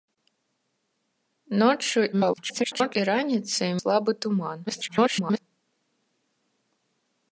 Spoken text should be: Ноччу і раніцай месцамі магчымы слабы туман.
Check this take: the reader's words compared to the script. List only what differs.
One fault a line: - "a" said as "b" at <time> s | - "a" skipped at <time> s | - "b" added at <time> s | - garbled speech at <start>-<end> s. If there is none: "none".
- garbled speech at 2.1-3.0 s
- "месцамі магчымы" skipped at 3.7 s
- garbled speech at 4.7-5.4 s